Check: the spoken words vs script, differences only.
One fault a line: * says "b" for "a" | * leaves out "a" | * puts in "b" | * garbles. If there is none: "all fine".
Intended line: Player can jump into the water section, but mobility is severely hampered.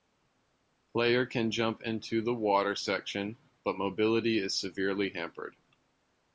all fine